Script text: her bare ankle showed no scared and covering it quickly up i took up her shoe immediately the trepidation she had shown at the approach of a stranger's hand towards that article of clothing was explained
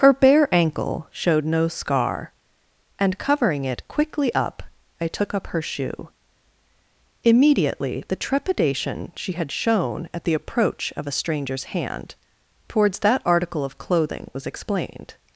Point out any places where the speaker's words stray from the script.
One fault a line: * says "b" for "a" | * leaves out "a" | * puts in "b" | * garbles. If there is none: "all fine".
* says "scar" for "scared"